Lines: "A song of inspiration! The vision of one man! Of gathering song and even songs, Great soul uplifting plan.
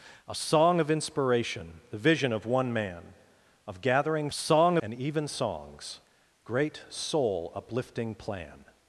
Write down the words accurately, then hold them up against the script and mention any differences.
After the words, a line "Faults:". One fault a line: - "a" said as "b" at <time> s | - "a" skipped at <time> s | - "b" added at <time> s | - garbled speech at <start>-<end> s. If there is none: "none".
"A song of inspiration! The vision of one man! Of gathering song and even songs, Great soul uplifting plan.
Faults:
none